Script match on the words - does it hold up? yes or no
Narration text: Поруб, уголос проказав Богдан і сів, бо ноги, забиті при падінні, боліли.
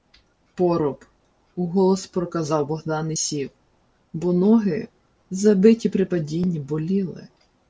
yes